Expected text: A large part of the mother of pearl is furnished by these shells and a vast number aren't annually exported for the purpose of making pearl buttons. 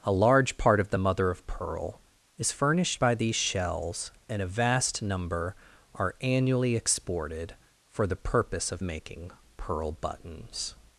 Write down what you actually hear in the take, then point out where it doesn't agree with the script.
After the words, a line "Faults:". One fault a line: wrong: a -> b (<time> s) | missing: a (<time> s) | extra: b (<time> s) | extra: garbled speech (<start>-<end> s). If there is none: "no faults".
A large part of the mother of pearl is furnished by these shells and a vast number are annually exported for the purpose of making pearl buttons.
Faults:
wrong: aren't -> are (6.0 s)